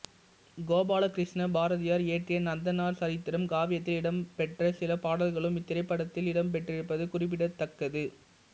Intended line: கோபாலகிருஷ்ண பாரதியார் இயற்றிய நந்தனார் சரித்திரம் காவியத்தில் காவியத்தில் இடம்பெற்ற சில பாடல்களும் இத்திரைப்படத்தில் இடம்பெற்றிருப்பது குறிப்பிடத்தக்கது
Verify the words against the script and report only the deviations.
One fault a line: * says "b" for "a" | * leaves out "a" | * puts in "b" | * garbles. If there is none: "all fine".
* leaves out "காவியத்தில்"